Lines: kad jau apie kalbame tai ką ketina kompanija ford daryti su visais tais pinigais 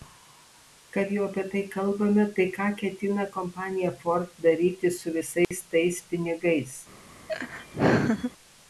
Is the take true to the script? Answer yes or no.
no